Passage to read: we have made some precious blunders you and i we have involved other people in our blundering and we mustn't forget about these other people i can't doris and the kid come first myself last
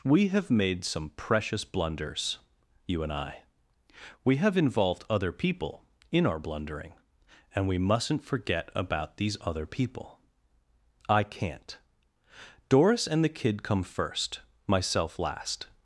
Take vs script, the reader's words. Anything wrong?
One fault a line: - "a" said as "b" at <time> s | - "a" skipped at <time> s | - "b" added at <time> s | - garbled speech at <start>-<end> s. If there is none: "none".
none